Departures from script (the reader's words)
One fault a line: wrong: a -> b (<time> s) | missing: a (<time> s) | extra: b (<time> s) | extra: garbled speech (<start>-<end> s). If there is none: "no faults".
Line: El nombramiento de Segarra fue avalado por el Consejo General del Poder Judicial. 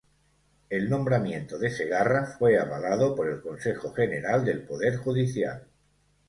no faults